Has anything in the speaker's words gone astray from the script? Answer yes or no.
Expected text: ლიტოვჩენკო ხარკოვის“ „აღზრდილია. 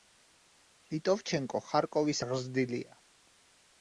no